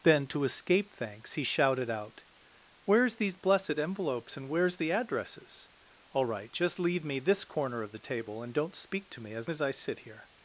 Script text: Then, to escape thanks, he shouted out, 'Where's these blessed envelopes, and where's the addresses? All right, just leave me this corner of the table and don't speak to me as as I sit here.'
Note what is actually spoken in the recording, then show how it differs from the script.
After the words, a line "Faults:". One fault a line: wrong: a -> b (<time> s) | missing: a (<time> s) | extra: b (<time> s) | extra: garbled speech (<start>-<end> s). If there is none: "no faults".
Then, to escape thanks, he shouted out, 'Where's these blessed envelopes, and where's the addresses? All right, just leave me this corner of the table and don't speak to me as as I sit here.'
Faults:
no faults